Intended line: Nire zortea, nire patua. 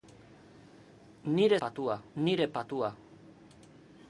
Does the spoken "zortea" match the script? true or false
false